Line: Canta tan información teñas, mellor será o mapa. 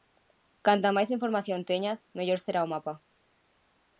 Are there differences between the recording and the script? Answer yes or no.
yes